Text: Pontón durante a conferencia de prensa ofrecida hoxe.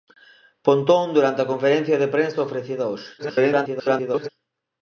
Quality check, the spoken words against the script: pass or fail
fail